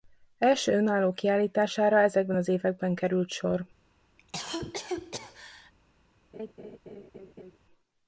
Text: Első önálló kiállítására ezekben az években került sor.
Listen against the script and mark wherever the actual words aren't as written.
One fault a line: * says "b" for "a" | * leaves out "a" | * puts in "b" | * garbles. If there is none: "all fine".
all fine